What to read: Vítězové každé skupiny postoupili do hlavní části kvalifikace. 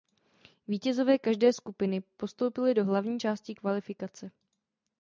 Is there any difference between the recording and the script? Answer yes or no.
no